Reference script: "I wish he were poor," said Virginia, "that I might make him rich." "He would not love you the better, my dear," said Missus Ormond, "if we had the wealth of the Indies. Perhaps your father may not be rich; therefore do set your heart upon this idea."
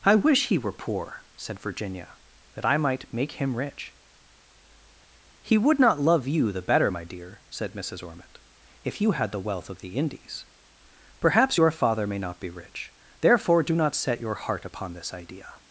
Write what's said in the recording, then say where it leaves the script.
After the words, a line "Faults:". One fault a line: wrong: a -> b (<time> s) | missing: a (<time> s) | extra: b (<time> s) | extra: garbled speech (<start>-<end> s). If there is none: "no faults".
"I wish he were poor," said Virginia, "that I might make him rich." "He would not love you the better, my dear," said Missus Ormond, "if you had the wealth of the Indies. Perhaps your father may not be rich; therefore do not set your heart upon this idea."
Faults:
wrong: we -> you (9.0 s)
extra: not (13.7 s)